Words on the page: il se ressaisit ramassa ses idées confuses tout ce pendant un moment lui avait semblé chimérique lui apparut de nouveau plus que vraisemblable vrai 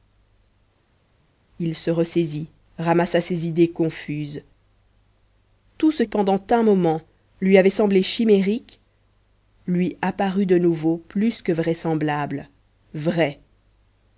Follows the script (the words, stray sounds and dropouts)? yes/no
yes